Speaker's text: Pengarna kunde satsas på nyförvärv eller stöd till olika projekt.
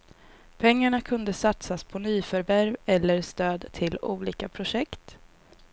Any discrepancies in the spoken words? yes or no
no